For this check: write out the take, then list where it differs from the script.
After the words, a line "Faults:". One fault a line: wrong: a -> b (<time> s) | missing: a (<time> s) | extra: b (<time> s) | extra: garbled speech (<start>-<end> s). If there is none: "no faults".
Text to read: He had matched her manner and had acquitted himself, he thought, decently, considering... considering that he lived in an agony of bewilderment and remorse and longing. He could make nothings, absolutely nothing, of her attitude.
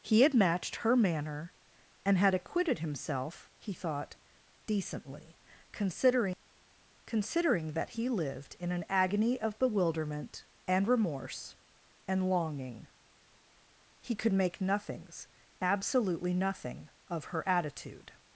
He had matched her manner and had acquitted himself, he thought, decently, considering... considering that he lived in an agony of bewilderment and remorse and longing. He could make nothings, absolutely nothing, of her attitude.
Faults:
no faults